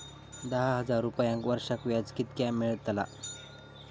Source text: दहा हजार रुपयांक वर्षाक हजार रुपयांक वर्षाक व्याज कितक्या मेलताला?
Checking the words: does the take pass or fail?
fail